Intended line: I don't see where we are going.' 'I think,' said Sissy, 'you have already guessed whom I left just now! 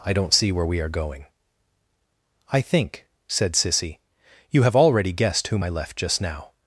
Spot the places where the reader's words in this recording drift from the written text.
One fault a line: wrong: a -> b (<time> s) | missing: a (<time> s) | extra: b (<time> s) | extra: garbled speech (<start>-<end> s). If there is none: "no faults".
no faults